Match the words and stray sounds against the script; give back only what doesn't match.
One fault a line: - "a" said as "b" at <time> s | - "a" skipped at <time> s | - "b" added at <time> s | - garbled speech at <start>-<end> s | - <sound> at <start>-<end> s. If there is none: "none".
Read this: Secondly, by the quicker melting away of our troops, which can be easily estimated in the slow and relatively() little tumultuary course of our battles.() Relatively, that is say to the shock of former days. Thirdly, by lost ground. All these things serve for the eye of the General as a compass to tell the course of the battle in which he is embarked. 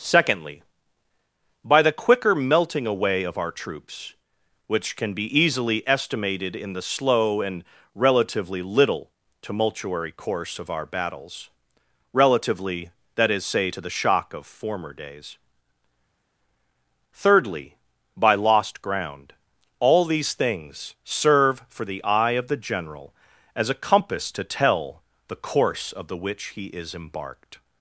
- "battle in" skipped at 26.2 s